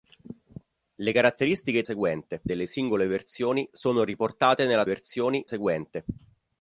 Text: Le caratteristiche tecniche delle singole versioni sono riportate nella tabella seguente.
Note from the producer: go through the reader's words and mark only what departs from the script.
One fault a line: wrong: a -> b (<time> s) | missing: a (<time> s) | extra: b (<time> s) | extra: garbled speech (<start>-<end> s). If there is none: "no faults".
wrong: tecniche -> seguente (1.8 s)
wrong: tabella -> versioni (4.8 s)